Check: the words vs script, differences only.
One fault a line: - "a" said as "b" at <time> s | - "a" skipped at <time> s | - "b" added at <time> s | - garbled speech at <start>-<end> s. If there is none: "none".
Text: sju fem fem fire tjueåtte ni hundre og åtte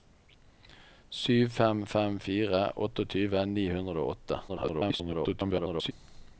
- garbled speech at 4.5-5.9 s